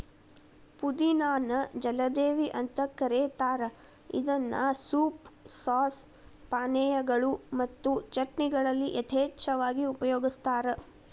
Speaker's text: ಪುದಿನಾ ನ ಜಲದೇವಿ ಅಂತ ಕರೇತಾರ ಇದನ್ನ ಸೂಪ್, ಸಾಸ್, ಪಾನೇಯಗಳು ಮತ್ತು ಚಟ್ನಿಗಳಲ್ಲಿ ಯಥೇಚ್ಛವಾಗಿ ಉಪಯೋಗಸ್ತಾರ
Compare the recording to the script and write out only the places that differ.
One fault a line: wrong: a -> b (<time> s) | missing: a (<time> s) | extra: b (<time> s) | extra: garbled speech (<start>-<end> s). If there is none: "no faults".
no faults